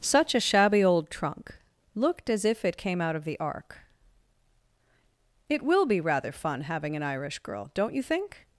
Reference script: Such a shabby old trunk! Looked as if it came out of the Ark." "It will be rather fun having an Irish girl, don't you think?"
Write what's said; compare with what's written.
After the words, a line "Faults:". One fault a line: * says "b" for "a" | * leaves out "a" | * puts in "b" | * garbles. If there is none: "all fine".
Such a shabby old trunk! Looked as if it came out of the Ark." "It will be rather fun having an Irish girl, don't you think?"
Faults:
all fine